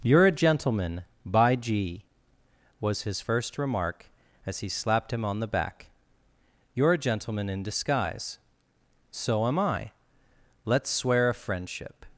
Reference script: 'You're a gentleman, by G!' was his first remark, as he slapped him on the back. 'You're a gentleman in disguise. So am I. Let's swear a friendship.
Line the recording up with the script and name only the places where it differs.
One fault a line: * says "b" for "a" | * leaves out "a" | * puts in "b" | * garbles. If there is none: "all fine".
all fine